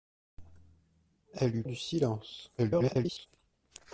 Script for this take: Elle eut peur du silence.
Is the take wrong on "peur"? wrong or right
wrong